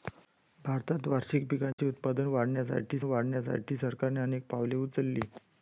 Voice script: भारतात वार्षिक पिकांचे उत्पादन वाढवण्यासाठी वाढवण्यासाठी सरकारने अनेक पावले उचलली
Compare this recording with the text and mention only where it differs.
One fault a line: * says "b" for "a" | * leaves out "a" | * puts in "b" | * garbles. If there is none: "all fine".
all fine